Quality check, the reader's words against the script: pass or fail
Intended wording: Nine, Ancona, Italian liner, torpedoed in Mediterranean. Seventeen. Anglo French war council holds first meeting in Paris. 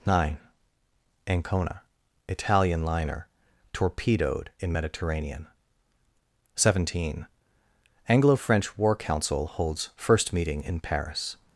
pass